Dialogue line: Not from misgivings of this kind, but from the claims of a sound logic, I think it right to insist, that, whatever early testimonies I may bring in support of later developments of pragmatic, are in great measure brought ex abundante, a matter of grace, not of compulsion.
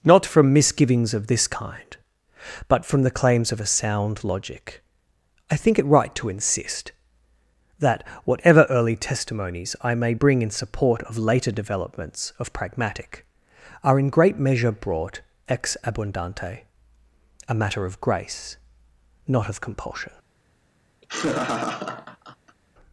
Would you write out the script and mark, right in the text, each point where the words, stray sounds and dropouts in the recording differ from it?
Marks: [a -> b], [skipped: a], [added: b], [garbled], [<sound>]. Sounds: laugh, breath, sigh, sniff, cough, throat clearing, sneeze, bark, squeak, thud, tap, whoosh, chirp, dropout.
Not from misgivings of this kind, but from the claims of a sound logic, I think it right to insist, that, whatever early testimonies I may bring in support of later developments of pragmatic, are in great measure brought ex abundante, a matter of grace, not of compulsion. [laugh]